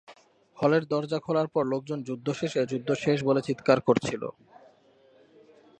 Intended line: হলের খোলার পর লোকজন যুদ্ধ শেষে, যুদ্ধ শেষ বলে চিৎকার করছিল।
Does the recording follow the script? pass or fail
fail